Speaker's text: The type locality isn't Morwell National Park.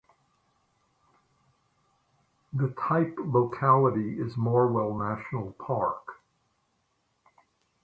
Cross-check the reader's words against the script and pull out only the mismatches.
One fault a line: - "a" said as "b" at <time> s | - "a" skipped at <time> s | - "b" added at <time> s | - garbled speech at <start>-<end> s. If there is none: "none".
- "isn't" said as "is" at 4.2 s